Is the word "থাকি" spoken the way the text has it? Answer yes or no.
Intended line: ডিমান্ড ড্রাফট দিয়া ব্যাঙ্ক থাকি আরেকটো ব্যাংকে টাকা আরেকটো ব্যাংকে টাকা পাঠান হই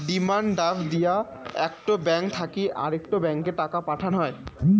yes